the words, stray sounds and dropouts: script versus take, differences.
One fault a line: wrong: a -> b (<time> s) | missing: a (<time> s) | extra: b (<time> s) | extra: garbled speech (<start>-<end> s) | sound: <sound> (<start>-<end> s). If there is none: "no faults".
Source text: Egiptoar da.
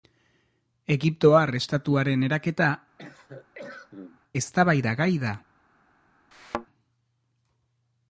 extra: estatuaren eraketa eztabaidagai (1.6 s)
sound: cough (3.0-4.2 s)
sound: thud (6.3-6.7 s)